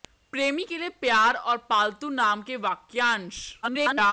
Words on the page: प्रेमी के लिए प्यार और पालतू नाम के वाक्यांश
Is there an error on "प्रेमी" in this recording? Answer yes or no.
no